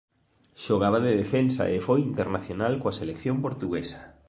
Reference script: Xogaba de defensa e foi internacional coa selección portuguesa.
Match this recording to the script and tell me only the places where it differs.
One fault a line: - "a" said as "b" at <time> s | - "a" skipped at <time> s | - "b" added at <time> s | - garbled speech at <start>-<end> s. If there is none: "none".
none